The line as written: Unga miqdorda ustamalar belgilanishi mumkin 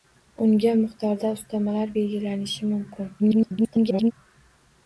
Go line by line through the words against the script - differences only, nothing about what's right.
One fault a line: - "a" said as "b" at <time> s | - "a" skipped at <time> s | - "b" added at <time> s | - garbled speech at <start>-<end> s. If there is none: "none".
- garbled speech at 3.2-4.1 s